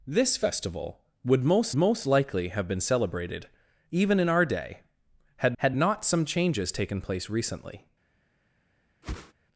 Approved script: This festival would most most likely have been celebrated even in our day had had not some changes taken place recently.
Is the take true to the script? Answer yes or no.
yes